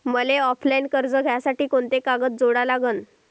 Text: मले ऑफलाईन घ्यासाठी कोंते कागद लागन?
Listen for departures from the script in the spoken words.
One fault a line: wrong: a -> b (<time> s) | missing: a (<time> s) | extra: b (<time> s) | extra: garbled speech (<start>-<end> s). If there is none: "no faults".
extra: कर्ज (0.9 s)
extra: जोडा (2.4 s)